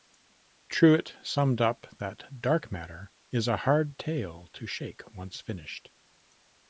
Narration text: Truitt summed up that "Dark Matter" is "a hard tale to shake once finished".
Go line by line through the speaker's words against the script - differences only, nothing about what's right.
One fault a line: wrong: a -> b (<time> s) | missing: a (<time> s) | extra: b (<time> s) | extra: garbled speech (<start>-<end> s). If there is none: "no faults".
no faults